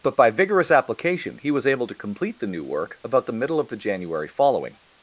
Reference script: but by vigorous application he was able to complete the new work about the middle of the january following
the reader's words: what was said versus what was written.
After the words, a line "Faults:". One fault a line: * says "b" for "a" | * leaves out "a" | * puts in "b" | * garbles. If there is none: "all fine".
but by vigorous application he was able to complete the new work about the middle of the january following
Faults:
all fine